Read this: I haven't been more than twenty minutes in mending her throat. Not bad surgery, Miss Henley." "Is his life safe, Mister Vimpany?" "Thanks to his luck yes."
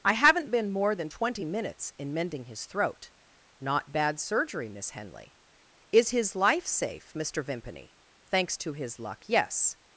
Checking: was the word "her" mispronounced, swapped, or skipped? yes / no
yes